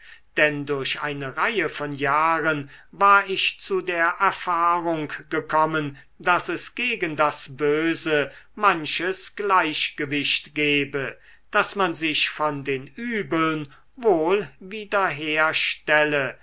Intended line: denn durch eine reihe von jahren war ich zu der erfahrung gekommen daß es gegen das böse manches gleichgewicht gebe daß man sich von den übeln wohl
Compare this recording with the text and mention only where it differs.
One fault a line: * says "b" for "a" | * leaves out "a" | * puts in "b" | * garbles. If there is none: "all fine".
all fine